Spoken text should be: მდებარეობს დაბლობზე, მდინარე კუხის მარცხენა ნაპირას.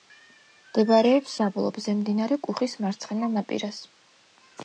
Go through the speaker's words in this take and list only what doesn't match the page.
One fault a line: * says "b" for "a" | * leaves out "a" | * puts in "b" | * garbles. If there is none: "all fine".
all fine